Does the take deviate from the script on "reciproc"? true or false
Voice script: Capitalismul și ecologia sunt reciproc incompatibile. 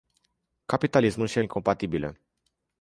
true